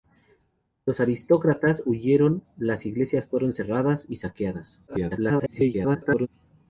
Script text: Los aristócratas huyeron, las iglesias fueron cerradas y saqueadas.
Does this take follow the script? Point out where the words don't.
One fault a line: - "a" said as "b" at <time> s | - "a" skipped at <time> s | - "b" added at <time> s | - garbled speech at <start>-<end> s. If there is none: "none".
- garbled speech at 4.9-6.3 s